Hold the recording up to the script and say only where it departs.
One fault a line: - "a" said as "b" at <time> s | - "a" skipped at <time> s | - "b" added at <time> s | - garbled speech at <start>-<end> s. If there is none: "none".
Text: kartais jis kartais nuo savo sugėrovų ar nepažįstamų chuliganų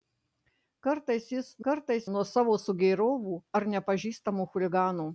none